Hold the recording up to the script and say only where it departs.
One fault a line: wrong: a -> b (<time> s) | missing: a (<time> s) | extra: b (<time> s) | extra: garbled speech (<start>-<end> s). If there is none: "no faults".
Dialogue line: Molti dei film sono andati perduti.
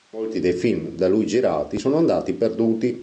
extra: da lui girati (0.9 s)